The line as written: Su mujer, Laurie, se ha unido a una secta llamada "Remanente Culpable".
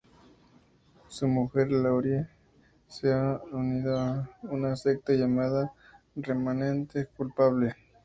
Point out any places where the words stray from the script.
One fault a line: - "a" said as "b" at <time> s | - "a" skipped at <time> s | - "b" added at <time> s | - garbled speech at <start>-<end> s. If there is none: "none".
none